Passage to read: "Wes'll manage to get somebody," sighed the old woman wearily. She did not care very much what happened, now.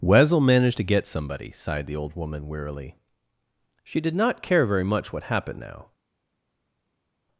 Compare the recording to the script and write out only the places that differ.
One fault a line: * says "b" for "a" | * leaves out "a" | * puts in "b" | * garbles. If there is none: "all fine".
all fine